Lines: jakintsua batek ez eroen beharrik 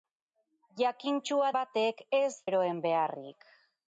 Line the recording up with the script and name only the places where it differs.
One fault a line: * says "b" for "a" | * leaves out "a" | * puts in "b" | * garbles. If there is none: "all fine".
all fine